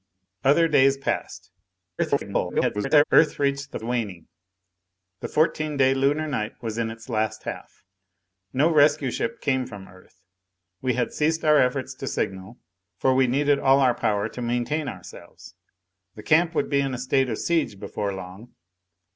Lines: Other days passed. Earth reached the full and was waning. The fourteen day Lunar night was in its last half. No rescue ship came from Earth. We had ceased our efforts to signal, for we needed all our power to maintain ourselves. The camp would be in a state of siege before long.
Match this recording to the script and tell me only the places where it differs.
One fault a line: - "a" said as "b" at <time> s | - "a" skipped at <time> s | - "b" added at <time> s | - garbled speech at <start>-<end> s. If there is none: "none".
- garbled speech at 2.0-3.0 s
- "full and was" skipped at 3.8 s